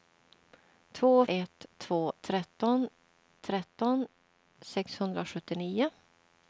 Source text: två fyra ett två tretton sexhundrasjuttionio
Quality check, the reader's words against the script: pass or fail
fail